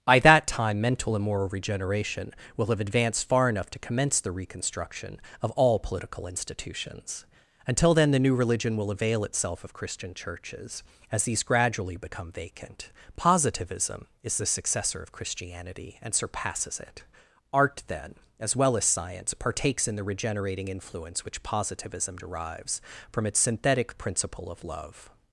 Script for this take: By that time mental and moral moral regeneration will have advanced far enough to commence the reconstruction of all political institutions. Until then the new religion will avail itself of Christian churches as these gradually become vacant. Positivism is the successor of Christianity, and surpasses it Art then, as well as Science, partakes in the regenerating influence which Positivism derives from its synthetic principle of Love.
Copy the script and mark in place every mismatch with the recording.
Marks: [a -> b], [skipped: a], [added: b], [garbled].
By that time mental and moral [skipped: moral] regeneration will have advanced far enough to commence the reconstruction of all political institutions. Until then the new religion will avail itself of Christian churches as these gradually become vacant. Positivism is the successor of Christianity, and surpasses it Art then, as well as Science, partakes in the regenerating influence which Positivism derives from its synthetic principle of Love.